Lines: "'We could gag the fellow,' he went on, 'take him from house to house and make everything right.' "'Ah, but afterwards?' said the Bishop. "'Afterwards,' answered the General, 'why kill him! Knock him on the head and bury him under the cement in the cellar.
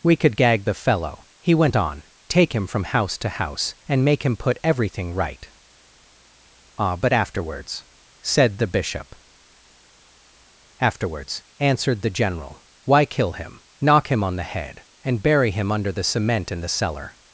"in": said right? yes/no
yes